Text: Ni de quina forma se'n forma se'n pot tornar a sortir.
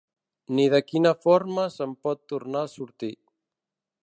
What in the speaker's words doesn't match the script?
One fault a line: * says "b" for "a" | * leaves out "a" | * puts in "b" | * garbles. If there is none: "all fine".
* leaves out "forma se'n"